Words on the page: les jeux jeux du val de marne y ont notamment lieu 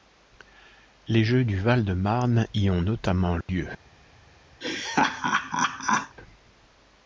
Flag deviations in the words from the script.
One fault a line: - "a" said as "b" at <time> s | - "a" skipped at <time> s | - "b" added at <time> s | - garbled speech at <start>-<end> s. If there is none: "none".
- "jeux" skipped at 1.4 s